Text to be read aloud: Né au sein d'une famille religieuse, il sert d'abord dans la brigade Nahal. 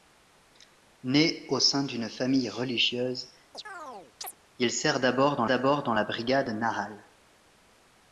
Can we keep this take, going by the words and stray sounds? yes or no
no